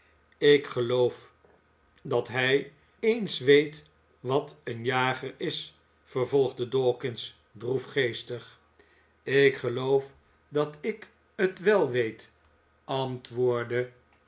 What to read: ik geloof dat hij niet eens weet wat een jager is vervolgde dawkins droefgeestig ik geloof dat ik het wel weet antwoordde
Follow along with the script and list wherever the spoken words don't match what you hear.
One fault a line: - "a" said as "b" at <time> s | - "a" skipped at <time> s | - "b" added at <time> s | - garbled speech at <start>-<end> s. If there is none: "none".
- "niet" skipped at 2.7 s